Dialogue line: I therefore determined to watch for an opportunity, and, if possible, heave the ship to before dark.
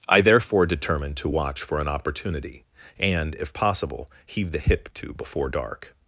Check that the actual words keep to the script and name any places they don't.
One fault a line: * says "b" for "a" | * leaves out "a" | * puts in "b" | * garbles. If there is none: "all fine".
* says "hip" for "ship"